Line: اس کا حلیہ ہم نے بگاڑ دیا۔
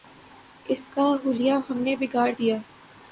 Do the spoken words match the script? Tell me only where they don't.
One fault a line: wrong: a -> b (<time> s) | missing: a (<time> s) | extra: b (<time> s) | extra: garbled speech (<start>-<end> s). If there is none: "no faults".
no faults